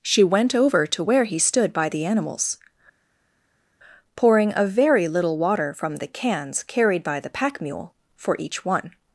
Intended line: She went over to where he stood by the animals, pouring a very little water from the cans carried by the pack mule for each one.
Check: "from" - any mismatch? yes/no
no